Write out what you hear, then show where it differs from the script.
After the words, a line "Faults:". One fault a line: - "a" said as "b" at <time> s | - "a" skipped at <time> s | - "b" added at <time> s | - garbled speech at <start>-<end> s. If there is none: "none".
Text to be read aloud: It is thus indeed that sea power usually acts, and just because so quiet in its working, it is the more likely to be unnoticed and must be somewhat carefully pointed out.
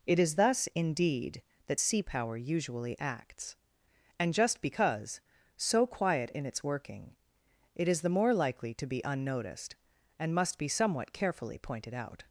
It is thus indeed that sea power usually acts, and just because so quiet in its working, it is the more likely to be unnoticed and must be somewhat carefully pointed out.
Faults:
none